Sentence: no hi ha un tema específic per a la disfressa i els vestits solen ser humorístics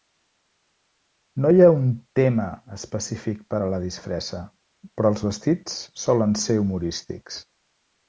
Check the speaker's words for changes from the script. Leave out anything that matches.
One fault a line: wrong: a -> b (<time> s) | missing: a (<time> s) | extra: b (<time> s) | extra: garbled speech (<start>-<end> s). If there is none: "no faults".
wrong: i -> però (5.0 s)